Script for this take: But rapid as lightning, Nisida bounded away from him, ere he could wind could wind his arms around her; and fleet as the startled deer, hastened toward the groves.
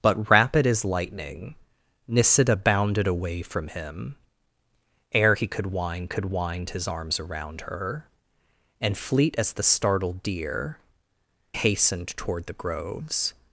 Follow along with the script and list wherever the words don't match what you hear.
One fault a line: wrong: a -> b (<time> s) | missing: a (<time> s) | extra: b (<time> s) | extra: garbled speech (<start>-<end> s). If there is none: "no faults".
no faults